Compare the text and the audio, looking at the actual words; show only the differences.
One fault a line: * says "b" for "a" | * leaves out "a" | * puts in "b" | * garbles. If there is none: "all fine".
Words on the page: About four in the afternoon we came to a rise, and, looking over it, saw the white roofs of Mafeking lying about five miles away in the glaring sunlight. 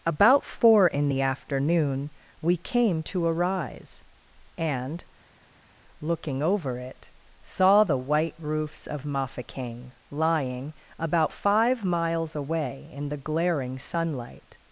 all fine